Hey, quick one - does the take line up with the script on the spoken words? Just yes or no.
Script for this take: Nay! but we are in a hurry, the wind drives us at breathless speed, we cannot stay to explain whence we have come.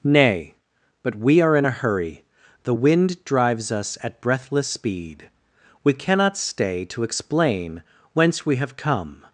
yes